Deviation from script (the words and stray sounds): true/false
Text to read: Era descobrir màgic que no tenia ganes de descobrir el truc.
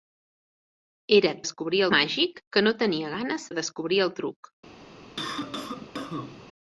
true